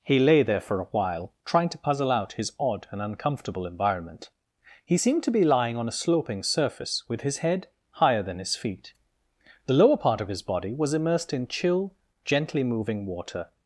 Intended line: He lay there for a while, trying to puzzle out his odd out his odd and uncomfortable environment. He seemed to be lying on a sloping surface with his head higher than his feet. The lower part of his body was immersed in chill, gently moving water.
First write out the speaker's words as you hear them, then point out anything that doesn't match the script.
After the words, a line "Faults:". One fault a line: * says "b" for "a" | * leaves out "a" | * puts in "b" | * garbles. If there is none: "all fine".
He lay there for a while, trying to puzzle out his odd and uncomfortable environment. He seemed to be lying on a sloping surface with his head higher than his feet. The lower part of his body was immersed in chill, gently moving water.
Faults:
* leaves out "out his odd"